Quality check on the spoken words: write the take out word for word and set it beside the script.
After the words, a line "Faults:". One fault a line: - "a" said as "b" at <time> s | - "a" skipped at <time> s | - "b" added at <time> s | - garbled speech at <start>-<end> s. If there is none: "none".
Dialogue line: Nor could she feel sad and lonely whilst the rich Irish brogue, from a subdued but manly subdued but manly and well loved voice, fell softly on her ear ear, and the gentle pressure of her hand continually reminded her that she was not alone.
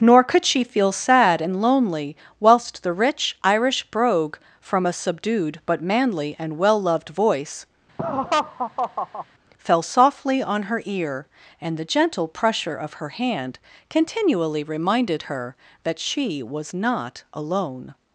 Nor could she feel sad and lonely whilst the rich Irish brogue, from a subdued but manly and well loved voice, fell softly on her ear, and the gentle pressure of her hand continually reminded her that she was not alone.
Faults:
- "subdued but manly" skipped at 6.3 s
- "ear" skipped at 11.3 s